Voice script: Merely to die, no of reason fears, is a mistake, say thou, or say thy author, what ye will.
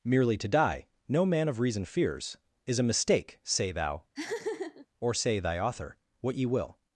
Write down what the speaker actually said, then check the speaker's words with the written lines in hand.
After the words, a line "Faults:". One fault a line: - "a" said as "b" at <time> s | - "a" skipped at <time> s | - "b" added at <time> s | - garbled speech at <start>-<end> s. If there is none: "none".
Merely to die, no man of reason fears, is a mistake, say thou, or say thy author, what ye will.
Faults:
- "man" added at 1.2 s